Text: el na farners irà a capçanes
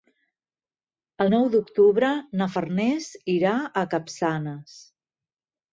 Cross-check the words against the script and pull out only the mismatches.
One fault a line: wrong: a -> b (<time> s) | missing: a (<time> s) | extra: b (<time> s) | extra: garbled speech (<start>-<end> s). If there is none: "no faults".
extra: nou d'octubre (1.3 s)